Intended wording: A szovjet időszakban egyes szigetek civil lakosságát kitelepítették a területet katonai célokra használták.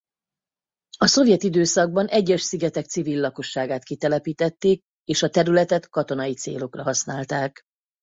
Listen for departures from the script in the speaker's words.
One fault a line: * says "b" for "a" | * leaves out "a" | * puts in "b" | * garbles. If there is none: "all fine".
* puts in "és"